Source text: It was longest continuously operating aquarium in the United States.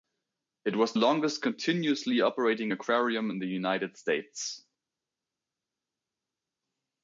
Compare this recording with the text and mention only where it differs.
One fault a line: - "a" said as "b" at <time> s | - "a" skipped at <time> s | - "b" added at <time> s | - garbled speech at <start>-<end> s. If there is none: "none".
none